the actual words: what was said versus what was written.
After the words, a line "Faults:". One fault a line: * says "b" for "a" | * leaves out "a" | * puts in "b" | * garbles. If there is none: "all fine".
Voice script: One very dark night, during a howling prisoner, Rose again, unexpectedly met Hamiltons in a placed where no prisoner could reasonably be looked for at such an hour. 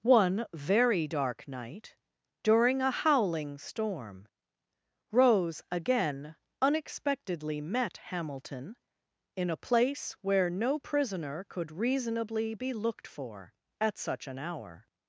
One very dark night, during a howling storm, Rose again, unexpectedly met Hamilton in a place where no prisoner could reasonably be looked for at such an hour.
Faults:
* says "storm" for "prisoner"
* says "Hamilton" for "Hamiltons"
* says "place" for "placed"